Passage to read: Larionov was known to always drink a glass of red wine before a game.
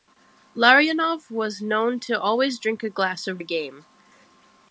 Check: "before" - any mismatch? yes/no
yes